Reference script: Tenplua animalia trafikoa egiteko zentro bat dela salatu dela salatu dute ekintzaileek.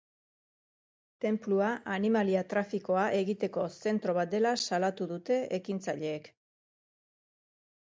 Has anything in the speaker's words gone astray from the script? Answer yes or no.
yes